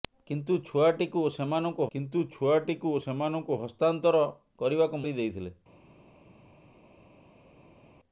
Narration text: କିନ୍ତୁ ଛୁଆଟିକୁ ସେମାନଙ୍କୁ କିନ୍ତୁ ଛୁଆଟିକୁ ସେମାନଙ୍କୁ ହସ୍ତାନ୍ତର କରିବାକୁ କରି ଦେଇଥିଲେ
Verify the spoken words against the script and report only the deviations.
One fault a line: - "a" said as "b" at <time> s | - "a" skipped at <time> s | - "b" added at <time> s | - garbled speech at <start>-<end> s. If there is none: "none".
none